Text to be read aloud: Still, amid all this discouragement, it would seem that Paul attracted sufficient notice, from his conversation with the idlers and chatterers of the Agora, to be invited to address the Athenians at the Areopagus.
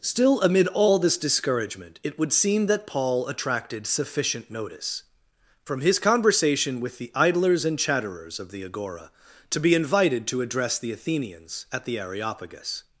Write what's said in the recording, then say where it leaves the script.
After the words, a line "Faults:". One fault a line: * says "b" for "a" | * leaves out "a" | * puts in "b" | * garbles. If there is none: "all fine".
Still, amid all this discouragement, it would seem that Paul attracted sufficient notice, from his conversation with the idlers and chatterers of the Agora, to be invited to address the Athenians at the Areopagus.
Faults:
all fine